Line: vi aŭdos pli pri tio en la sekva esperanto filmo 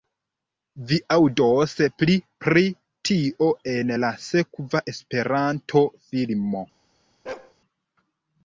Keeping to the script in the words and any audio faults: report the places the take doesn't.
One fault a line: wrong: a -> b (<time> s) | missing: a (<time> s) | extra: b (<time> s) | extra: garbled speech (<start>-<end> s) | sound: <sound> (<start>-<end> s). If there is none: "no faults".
sound: bark (7.3-7.5 s)